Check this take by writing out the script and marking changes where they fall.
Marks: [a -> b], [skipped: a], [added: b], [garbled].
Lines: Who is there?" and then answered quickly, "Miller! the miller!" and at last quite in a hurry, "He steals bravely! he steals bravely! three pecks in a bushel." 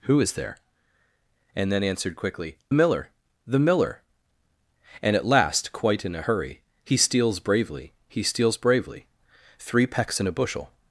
Who is there?" and then answered quickly, "Miller! the miller!" and at last quite in a hurry, "He steals bravely! he steals bravely! three pecks in a bushel."